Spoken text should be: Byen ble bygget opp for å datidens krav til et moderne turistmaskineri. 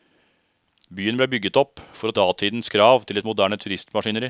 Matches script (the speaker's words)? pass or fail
pass